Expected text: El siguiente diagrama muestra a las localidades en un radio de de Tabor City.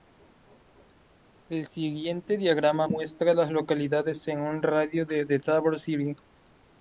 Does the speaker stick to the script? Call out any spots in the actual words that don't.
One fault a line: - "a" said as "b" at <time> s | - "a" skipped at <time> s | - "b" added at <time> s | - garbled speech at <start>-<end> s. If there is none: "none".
none